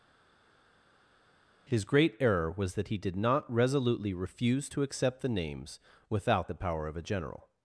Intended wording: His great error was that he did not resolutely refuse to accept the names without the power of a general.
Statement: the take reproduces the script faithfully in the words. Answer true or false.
true